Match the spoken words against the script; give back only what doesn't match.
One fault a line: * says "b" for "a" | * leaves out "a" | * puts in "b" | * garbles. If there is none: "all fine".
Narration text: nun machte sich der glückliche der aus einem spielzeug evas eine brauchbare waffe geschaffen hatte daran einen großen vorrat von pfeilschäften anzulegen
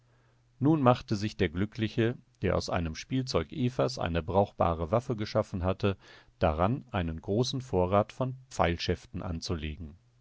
all fine